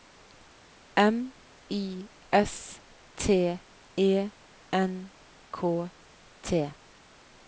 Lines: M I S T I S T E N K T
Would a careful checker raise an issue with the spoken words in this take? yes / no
yes